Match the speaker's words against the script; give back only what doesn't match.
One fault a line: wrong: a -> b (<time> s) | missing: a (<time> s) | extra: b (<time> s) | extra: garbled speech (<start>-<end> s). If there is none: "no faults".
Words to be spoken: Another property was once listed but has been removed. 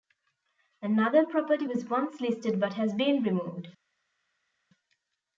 no faults